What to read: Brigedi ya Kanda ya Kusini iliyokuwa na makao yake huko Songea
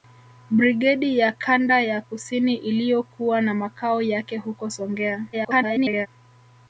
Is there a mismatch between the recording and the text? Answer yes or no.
yes